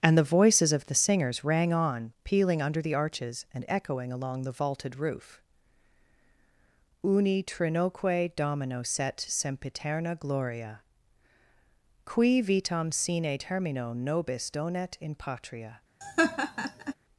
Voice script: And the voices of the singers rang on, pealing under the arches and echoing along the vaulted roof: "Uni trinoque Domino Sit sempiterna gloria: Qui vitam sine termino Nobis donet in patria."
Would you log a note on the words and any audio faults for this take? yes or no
yes